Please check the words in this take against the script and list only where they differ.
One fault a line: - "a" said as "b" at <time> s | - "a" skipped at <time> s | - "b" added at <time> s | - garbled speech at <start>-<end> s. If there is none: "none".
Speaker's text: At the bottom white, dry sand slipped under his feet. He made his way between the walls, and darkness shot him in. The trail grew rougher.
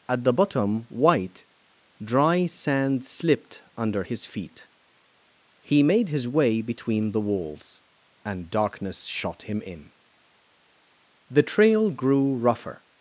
none